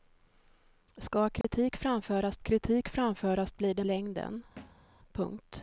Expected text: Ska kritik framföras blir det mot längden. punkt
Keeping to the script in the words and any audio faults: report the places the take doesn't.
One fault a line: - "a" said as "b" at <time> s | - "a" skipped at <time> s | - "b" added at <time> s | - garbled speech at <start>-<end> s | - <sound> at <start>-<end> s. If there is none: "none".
- dropout at 1.4-1.4 s
- "kritik framföras" added at 2.4 s
- "mot" skipped at 3.8 s
- thud at 4.6-4.9 s